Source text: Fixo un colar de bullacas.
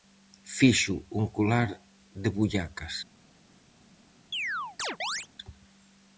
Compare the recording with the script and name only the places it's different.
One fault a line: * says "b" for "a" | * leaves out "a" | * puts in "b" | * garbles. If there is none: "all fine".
all fine